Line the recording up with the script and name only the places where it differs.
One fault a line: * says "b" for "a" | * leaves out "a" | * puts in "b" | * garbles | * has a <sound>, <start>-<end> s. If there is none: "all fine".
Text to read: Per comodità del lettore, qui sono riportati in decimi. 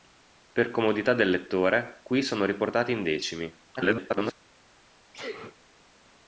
* garbles
* has a sneeze, 5.1-5.6 s